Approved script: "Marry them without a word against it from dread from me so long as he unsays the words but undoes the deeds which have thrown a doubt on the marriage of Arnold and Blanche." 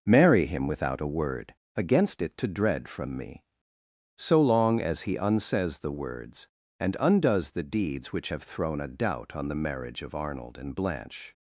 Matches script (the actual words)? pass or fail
fail